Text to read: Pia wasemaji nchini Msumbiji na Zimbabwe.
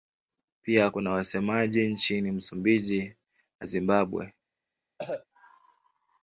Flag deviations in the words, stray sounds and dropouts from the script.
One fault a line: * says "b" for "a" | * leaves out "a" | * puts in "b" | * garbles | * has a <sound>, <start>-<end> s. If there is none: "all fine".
* puts in "kuna"
* has a cough, 5.0-5.3 s